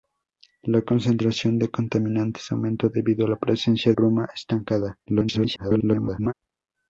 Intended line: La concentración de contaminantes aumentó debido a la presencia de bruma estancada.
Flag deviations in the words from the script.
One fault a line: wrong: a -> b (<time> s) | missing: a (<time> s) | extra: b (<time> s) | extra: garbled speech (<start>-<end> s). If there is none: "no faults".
missing: de (3.9 s)
extra: garbled speech (5.1-6.3 s)